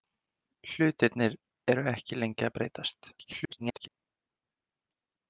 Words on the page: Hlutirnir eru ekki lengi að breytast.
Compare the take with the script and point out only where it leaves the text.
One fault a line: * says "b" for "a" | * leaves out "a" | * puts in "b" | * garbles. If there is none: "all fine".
* garbles